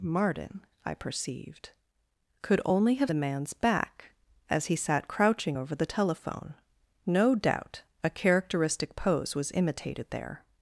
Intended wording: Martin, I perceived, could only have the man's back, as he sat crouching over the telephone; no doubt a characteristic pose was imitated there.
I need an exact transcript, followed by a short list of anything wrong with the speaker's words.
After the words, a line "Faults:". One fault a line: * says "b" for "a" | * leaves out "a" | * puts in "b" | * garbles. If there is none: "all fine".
Martin, I perceived, could only have the man's back, as he sat crouching over the telephone; no doubt a characteristic pose was imitated there.
Faults:
all fine